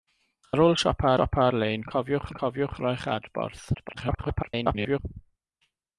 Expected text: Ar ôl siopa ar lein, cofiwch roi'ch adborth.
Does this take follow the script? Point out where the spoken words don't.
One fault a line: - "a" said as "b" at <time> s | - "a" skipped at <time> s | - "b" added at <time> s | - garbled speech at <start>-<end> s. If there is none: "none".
- "siopa" added at 1.2 s
- "cofiwch" added at 2.4 s
- garbled speech at 3.7-5.0 s